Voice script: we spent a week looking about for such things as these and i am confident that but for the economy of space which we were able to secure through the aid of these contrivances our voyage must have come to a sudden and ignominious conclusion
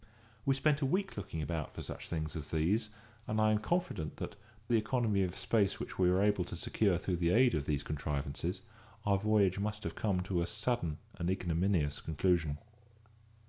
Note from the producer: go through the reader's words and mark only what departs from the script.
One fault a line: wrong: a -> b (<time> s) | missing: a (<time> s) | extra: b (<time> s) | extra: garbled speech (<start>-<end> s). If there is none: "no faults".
missing: but for (4.3 s)